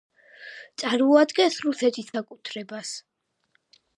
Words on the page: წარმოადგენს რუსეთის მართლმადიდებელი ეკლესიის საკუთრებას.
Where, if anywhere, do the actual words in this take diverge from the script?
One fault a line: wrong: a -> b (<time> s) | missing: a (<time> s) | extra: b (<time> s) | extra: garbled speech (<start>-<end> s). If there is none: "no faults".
missing: მართლმადიდებელი ეკლესიის (2.1 s)